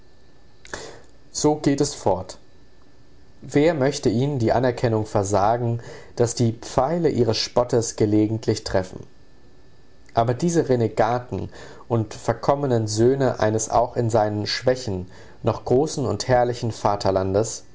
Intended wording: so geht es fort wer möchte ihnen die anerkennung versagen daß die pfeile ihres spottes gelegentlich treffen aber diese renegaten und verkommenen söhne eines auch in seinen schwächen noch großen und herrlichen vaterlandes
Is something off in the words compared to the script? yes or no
no